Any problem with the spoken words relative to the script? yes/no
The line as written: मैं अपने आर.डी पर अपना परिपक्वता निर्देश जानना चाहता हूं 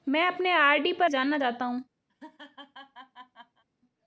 yes